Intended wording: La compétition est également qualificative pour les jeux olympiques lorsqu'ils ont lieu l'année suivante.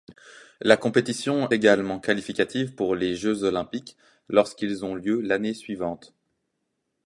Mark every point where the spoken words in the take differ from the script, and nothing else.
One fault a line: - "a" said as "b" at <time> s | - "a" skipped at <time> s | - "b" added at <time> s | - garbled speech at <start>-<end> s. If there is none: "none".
- "est" skipped at 1.5 s